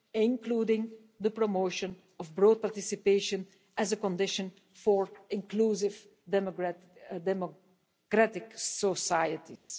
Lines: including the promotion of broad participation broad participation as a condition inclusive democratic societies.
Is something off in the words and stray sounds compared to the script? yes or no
yes